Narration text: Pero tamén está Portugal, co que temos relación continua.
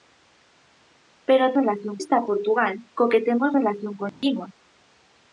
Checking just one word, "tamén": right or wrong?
wrong